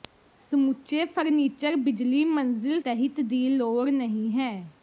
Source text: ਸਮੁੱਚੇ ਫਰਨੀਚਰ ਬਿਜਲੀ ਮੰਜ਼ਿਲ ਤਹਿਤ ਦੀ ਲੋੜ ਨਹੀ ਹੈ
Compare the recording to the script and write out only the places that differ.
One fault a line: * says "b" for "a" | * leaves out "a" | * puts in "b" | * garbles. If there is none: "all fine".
all fine